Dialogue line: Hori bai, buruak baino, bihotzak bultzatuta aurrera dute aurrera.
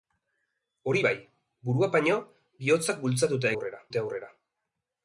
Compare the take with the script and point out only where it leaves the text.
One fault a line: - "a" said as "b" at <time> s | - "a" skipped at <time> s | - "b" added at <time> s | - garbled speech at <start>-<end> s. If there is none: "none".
none